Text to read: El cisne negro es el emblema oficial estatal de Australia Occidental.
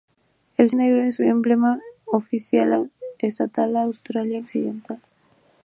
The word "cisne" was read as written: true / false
false